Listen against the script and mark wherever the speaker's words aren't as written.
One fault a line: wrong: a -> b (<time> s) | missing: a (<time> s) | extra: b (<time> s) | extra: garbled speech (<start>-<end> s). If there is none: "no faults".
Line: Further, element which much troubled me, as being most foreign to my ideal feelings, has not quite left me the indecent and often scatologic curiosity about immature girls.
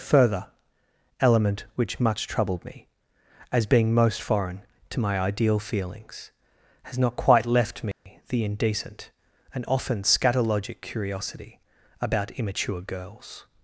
no faults